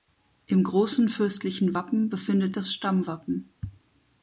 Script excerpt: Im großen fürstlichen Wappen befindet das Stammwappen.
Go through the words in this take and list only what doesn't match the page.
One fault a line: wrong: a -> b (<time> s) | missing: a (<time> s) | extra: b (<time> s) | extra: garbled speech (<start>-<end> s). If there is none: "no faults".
no faults